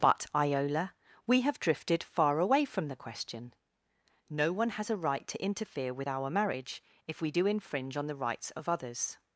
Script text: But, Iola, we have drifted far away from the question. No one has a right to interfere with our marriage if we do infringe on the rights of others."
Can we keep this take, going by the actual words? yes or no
yes